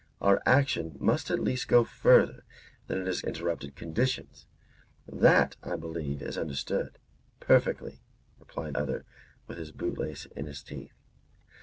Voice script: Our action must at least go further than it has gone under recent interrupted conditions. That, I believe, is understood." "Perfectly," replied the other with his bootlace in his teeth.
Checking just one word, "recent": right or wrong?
wrong